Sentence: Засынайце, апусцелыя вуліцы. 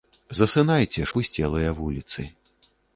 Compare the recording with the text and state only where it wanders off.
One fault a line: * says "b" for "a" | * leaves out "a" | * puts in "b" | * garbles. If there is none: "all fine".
all fine